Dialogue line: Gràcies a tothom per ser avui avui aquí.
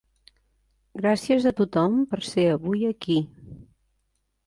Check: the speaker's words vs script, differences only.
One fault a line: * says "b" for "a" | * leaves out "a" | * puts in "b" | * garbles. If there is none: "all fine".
* leaves out "avui"